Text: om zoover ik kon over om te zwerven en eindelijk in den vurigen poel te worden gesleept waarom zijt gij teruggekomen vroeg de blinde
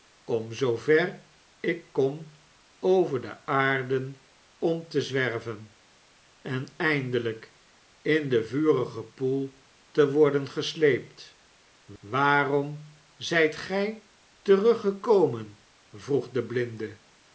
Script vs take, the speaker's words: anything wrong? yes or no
yes